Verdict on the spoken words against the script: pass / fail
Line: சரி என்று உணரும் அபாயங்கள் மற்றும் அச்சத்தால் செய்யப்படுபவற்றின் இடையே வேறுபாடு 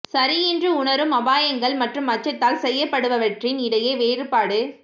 pass